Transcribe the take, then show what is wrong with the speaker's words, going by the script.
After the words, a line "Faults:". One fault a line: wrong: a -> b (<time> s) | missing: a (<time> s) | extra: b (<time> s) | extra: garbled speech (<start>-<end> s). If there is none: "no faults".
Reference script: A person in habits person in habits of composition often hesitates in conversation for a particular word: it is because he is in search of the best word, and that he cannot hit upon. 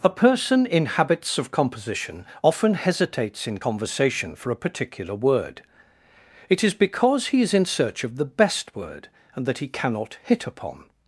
A person in habits of composition often hesitates in conversation for a particular word: it is because he is in search of the best word, and that he cannot hit upon.
Faults:
missing: person in habits (1.4 s)